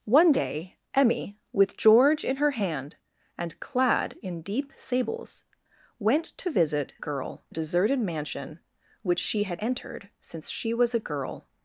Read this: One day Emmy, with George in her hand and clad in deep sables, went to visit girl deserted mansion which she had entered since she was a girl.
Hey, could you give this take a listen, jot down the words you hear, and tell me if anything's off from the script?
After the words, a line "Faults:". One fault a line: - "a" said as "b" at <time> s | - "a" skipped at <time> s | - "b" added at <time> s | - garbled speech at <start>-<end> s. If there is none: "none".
One day Emmy, with George in her hand and clad in deep sables, went to visit girl deserted mansion which she had entered since she was a girl.
Faults:
none